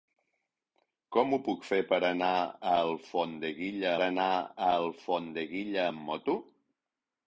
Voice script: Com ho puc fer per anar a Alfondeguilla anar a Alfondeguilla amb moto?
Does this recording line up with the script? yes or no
yes